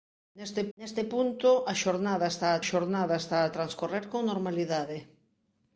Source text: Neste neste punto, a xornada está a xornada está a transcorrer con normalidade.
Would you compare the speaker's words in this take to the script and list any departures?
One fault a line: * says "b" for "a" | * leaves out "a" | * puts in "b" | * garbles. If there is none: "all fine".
all fine